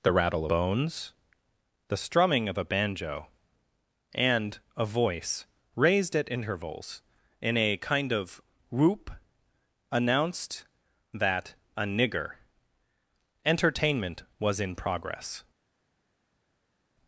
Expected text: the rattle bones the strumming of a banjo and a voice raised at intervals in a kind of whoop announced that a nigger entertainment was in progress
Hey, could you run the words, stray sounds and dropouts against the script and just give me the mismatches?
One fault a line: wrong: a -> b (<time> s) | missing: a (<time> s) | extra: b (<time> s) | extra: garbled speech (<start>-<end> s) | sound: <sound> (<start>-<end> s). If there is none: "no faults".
no faults